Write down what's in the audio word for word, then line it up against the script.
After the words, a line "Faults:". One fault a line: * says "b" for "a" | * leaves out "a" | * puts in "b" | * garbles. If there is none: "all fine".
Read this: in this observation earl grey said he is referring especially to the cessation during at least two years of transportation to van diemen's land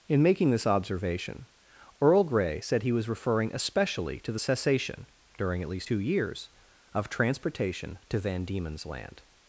in making this observation earl grey said he was referring especially to the cessation during at least two years of transportation to van diemen's land
Faults:
* puts in "making"
* says "was" for "is"